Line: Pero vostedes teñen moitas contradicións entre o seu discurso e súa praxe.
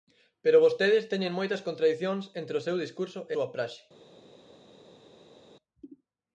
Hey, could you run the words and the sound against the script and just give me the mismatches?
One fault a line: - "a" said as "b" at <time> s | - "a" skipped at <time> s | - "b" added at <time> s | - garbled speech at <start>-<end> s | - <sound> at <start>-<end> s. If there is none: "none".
none